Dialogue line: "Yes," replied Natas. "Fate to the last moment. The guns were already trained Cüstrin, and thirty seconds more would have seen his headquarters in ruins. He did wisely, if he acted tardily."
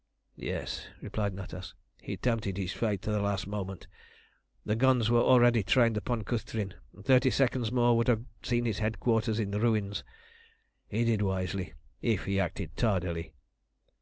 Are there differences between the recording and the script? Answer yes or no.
yes